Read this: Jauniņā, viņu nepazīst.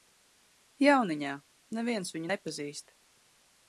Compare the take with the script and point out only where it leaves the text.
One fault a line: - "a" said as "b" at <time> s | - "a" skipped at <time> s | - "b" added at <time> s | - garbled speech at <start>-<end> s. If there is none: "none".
- "neviens" added at 1.8 s